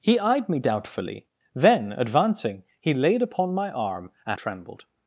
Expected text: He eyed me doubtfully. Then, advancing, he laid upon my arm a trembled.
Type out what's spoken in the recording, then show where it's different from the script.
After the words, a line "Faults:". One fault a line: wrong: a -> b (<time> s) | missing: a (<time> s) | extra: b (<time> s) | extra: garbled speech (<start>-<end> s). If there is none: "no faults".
He eyed me doubtfully. Then, advancing, he laid upon my arm a trembled.
Faults:
no faults